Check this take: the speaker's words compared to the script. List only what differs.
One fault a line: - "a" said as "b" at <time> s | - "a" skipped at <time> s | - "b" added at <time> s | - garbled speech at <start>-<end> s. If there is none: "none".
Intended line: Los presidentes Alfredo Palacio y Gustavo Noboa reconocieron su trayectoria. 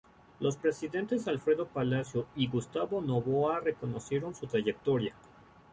none